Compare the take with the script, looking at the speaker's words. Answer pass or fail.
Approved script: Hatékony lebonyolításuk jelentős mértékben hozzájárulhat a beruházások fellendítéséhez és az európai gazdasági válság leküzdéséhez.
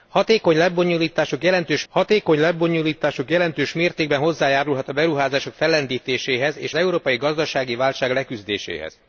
fail